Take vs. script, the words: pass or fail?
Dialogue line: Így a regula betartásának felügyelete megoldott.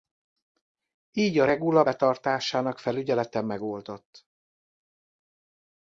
pass